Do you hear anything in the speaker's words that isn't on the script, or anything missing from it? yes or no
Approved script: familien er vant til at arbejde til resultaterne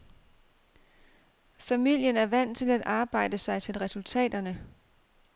yes